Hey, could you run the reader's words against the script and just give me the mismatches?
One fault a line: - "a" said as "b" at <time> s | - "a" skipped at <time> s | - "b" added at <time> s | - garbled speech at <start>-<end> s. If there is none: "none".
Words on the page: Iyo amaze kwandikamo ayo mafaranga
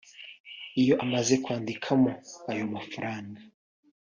none